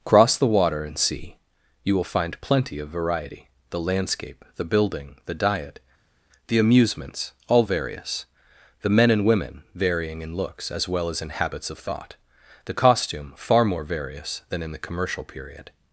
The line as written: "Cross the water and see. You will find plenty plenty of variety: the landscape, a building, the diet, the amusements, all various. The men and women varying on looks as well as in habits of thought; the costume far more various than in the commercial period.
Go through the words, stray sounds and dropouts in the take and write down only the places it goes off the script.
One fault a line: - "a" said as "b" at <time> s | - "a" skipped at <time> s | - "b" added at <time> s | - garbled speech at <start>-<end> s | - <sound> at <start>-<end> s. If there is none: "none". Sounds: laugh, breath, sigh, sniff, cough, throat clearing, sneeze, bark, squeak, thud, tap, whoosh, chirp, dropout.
- "plenty" skipped at 2.8 s
- "a" said as "the" at 4.5 s
- "on" said as "in" at 10.2 s